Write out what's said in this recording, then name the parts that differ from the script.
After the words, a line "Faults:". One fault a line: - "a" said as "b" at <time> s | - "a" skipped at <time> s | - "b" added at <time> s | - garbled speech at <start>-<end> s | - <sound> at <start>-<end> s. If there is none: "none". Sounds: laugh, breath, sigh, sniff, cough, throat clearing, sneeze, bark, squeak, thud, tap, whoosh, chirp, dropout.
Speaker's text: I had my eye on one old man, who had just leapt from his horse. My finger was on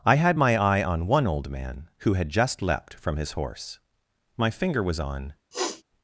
I had my eye on one old man, who had just leapt from his horse. My finger was on
Faults:
- sniff at 5.5-5.8 s